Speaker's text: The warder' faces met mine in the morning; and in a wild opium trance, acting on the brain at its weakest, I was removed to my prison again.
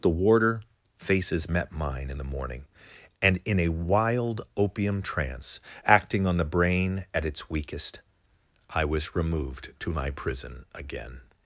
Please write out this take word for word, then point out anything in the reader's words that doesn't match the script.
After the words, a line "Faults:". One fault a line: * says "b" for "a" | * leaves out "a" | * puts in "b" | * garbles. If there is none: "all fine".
The warder' faces met mine in the morning; and in a wild opium trance, acting on the brain at its weakest, I was removed to my prison again.
Faults:
all fine